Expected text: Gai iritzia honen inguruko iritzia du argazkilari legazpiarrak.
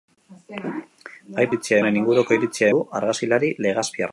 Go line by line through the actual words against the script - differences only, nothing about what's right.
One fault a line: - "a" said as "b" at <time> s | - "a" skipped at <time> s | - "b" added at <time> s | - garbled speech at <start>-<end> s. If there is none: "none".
none